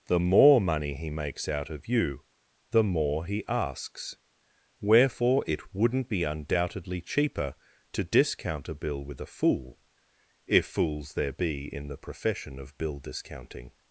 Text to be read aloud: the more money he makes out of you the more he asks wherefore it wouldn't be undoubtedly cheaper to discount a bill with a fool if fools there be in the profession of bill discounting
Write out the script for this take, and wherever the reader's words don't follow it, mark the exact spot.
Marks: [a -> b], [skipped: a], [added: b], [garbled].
the more money he makes out of you the more he asks wherefore it wouldn't be undoubtedly cheaper to discount a bill with a fool if fools there be in the profession of bill discounting